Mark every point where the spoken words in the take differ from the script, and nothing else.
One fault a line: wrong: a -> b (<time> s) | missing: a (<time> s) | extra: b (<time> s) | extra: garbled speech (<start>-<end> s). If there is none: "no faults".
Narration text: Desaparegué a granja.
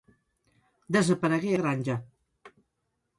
no faults